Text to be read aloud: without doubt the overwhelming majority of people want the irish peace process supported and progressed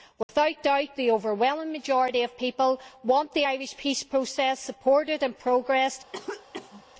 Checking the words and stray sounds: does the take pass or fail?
fail